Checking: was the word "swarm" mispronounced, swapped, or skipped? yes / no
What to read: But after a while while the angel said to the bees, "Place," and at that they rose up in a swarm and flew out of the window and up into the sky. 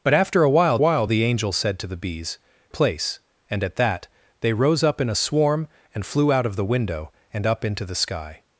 no